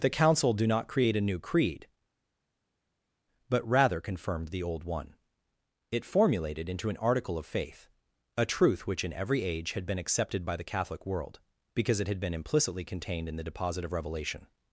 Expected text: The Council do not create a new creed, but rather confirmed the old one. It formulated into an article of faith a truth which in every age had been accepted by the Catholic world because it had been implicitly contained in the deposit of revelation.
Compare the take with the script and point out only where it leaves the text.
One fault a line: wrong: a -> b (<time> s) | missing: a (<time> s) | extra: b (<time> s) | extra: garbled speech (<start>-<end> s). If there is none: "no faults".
no faults